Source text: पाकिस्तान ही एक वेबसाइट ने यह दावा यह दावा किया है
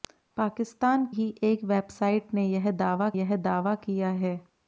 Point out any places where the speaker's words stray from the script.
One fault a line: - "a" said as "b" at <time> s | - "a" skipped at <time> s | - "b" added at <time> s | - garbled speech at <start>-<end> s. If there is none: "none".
none